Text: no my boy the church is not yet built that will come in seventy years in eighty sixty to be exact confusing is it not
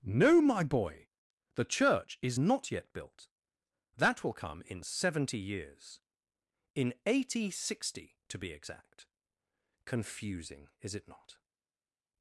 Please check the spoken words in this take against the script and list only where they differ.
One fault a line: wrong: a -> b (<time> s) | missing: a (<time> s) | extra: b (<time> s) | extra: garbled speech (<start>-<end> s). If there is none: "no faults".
no faults